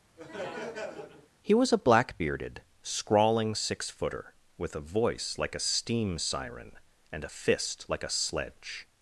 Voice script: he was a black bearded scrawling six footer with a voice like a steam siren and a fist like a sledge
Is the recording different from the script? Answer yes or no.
no